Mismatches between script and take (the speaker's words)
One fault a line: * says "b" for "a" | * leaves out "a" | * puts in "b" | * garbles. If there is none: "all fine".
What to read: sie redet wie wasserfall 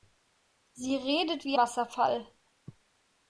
all fine